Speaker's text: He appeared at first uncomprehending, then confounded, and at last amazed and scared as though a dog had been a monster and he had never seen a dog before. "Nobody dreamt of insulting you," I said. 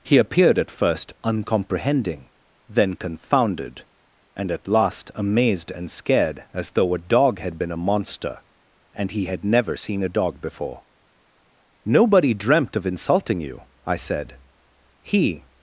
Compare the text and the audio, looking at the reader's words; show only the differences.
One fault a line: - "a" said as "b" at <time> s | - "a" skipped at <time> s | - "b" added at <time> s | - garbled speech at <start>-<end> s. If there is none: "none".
- "He" added at 15.0 s